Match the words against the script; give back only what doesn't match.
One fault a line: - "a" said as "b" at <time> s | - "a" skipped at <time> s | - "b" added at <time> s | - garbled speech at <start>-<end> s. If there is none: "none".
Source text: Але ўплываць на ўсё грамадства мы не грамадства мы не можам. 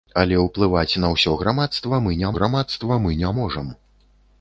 none